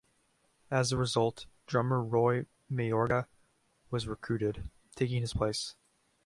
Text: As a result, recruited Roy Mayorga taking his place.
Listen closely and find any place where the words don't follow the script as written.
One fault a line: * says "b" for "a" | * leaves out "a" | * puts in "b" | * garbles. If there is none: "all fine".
* says "drummer" for "recruited"
* puts in "was recruited"